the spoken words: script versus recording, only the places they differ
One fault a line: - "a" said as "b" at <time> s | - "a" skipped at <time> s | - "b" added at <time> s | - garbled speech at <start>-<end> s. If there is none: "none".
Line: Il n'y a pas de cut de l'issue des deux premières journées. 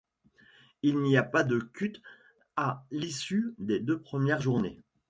- "de" said as "à" at 2.5 s